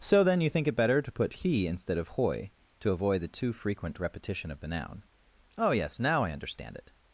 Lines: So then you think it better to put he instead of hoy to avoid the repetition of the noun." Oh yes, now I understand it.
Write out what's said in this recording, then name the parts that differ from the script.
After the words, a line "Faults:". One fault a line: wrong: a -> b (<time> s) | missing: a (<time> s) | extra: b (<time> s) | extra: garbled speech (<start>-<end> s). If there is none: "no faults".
So then you think it better to put he instead of hoy to avoid the too frequent repetition of the noun." Oh yes, now I understand it.
Faults:
extra: too frequent (3.3 s)